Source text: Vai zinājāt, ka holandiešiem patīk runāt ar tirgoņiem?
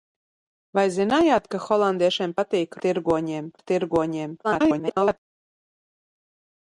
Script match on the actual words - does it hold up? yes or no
no